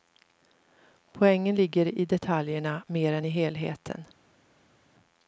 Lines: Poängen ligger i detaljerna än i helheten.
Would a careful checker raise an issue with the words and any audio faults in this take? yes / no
yes